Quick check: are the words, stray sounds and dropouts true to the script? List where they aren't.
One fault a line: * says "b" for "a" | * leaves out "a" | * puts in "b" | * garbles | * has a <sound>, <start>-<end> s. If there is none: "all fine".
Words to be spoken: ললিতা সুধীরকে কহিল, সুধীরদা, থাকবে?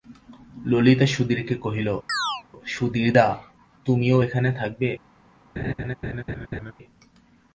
* has a chirp, 2.1-2.4 s
* puts in "তুমিও এখানে"
* has a laugh, 5.6-6.7 s